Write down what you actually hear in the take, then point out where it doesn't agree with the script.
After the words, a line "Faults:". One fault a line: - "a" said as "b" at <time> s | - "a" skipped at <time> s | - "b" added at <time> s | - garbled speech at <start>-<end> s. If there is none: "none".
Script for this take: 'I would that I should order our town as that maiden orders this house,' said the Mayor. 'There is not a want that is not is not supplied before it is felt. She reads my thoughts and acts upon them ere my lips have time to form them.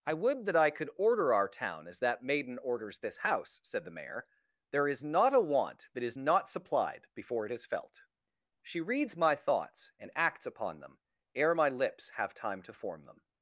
'I would that I could order our town as that maiden orders this house,' said the Mayor. 'There is not a want that is not supplied before it is felt. She reads my thoughts and acts upon them ere my lips have time to form them.
Faults:
- "should" said as "could" at 0.7 s
- "is not" skipped at 6.5 s